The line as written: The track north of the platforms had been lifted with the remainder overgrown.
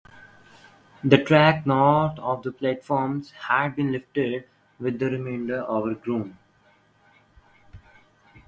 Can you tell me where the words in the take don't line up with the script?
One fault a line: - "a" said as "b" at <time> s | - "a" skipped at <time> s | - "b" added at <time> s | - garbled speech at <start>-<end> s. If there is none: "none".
none